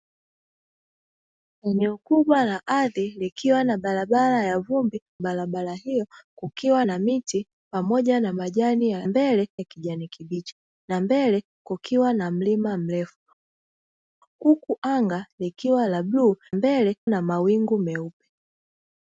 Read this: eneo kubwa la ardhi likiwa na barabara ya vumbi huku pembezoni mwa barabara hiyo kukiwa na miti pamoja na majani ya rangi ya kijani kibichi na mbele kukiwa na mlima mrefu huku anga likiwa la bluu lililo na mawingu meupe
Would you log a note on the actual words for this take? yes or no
yes